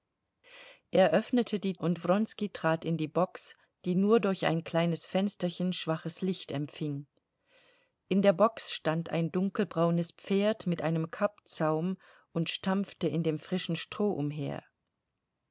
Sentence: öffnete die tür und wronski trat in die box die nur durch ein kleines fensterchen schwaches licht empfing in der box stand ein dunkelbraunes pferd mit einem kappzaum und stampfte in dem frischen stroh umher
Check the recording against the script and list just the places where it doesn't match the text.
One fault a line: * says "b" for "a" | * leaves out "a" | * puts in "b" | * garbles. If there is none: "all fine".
* leaves out "tür"